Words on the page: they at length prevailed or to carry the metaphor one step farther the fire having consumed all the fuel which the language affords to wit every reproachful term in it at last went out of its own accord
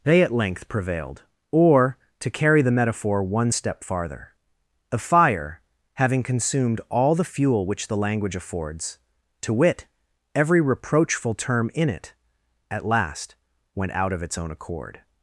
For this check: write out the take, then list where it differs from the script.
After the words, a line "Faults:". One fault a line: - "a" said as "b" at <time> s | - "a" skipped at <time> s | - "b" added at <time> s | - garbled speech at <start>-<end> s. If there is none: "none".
they at length prevailed or to carry the metaphor one step farther a fire having consumed all the fuel which the language affords to wit every reproachful term in it at last went out of its own accord
Faults:
- "the" said as "a" at 4.9 s